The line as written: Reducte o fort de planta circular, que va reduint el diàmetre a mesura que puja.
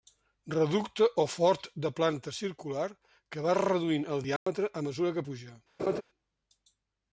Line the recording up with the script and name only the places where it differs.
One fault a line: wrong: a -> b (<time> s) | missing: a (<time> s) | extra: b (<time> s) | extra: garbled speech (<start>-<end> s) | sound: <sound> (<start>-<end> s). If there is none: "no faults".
sound: dropout (4.4-4.5 s)
sound: laugh (5.8-6.0 s)